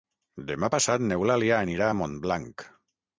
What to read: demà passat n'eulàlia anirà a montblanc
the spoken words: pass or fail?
pass